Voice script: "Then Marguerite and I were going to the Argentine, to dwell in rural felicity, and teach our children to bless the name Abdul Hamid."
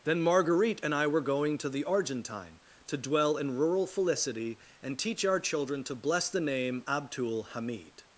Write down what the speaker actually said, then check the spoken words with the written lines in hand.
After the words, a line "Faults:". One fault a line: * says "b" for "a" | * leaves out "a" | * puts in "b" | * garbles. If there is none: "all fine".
"Then Marguerite and I were going to the Argentine, to dwell in rural felicity, and teach our children to bless the name Abdul Hamid."
Faults:
all fine